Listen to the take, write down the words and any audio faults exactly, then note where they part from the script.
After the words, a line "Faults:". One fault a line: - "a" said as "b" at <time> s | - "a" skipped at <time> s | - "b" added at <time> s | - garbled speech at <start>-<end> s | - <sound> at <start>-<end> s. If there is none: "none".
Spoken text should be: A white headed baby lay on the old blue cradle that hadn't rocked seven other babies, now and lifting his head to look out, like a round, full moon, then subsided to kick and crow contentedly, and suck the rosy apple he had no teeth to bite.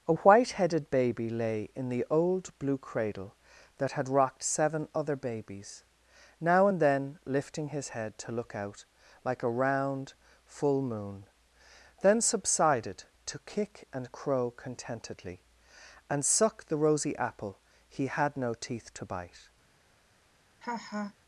A white headed baby lay in the old blue cradle that had rocked seven other babies, now and then lifting his head to look out, like a round, full moon, then subsided to kick and crow contentedly, and suck the rosy apple he had no teeth to bite.
Faults:
- "on" said as "in" at 1.8 s
- "hadn't" said as "had" at 3.9 s
- "then" added at 6.8 s
- laugh at 20.6-21.1 s